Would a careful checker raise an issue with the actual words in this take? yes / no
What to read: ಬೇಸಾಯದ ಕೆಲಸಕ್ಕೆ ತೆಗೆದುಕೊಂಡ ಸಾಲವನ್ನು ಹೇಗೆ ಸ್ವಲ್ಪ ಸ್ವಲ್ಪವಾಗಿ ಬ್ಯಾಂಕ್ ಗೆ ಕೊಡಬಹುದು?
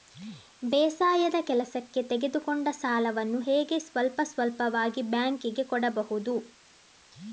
no